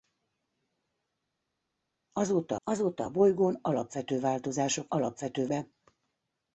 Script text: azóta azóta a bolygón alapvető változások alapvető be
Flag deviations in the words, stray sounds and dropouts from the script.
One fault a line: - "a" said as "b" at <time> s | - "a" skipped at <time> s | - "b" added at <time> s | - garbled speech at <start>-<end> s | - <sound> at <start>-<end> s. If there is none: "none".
none